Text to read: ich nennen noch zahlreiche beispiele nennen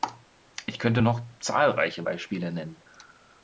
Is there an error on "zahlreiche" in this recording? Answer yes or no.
no